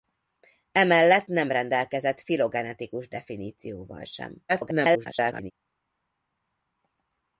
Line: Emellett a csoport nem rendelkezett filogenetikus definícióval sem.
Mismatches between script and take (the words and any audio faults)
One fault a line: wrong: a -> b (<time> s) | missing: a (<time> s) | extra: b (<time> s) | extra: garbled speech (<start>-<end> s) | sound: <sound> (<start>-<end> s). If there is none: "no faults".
missing: a csoport (1.3 s)
extra: garbled speech (4.5-5.5 s)